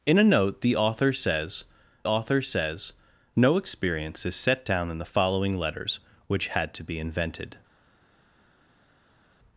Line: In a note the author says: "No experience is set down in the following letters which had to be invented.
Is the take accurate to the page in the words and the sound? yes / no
no